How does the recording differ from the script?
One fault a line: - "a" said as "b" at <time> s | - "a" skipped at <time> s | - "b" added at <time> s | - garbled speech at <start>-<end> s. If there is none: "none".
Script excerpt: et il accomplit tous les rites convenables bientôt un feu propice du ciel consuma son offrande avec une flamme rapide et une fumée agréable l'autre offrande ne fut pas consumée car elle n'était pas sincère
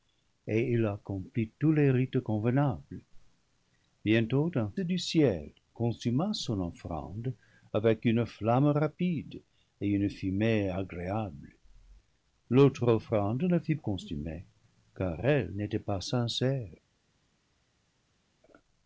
- "feu propice" skipped at 4.7 s
- "pas" skipped at 13.8 s